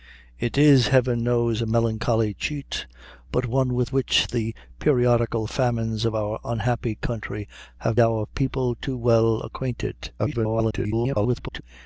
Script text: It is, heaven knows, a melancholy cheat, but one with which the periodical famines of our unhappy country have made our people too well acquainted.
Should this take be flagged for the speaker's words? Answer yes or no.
yes